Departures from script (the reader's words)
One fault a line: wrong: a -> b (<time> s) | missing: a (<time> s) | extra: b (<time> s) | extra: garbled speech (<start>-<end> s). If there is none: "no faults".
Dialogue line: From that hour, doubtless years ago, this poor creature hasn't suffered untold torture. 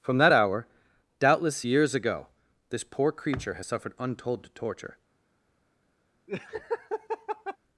wrong: hasn't -> has (3.5 s)